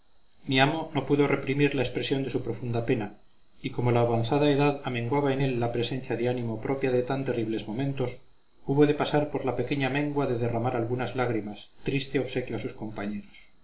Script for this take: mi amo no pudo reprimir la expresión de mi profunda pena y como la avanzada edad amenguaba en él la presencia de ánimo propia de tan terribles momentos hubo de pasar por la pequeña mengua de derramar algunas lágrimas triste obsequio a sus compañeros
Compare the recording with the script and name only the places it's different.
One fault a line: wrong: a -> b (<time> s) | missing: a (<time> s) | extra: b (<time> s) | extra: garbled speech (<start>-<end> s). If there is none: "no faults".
wrong: mi -> su (2.3 s)